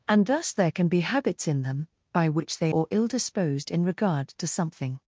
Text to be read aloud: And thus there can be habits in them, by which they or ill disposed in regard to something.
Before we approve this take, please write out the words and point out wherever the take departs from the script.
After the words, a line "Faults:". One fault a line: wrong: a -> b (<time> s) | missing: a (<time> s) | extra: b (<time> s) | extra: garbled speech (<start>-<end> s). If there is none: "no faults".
And thus there can be habits in them, by which they or ill disposed in regard to something.
Faults:
no faults